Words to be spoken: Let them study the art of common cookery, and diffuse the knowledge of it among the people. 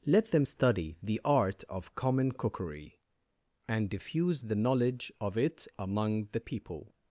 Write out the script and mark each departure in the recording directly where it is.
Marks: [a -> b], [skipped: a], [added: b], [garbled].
Let them study the art of common cookery, and diffuse the knowledge of it among the people.